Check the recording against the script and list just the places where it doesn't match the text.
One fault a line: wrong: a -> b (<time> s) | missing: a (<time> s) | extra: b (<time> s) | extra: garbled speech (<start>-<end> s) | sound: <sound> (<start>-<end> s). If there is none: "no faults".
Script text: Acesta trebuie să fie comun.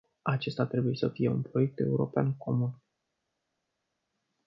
extra: un proiect european (1.3 s)